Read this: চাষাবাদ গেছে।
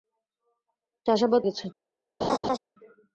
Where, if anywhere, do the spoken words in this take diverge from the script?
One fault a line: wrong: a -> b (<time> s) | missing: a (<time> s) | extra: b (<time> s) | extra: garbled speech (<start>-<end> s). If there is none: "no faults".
no faults